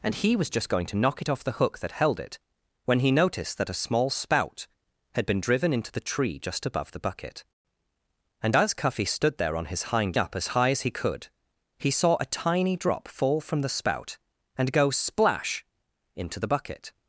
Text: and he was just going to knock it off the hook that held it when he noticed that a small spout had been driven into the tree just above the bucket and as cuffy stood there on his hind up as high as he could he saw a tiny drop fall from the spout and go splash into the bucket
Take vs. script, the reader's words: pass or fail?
pass